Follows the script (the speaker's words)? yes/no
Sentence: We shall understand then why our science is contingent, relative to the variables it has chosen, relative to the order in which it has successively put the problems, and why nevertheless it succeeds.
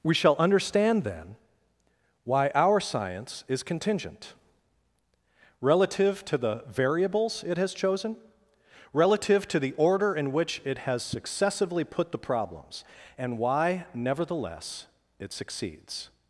yes